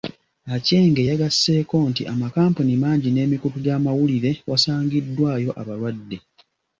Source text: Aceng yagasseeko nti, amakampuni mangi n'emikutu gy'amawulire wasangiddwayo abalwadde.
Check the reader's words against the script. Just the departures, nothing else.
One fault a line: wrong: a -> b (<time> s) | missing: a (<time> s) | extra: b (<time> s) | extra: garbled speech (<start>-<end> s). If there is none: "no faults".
no faults